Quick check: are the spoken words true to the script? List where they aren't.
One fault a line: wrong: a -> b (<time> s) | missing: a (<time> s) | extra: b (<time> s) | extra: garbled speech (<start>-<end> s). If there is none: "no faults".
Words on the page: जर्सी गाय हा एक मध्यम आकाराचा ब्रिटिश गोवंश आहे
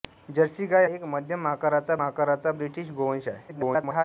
missing: हा (0.8 s)
extra: आकाराचा (2.0 s)
extra: garbled speech (3.5-4.0 s)